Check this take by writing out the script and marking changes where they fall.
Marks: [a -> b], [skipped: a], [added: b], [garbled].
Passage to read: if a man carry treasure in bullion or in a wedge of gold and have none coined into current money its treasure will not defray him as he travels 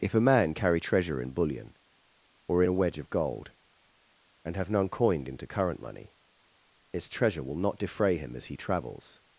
if a man carry treasure in bullion or in a wedge of gold and have none coined into current money its treasure will not defray him as he travels